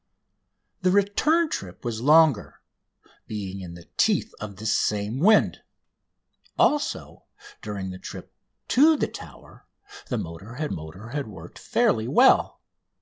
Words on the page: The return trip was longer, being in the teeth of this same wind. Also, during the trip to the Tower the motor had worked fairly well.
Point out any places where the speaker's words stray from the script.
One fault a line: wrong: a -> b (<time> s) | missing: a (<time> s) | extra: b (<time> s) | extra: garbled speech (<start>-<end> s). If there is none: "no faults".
extra: motor had (10.7 s)